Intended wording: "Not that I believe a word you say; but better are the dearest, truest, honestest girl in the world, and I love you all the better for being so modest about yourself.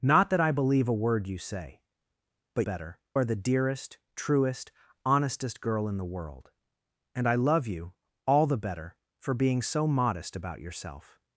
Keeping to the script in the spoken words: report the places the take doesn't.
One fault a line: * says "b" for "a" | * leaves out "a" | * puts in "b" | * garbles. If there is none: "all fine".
all fine